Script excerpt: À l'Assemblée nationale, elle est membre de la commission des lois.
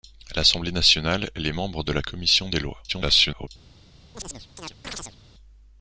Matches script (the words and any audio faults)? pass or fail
fail